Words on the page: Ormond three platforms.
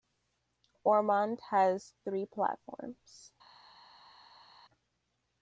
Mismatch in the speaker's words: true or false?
true